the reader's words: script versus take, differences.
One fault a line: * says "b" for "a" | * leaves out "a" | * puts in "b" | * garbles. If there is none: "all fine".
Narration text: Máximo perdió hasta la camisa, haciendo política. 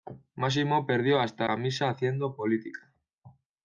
* leaves out "la"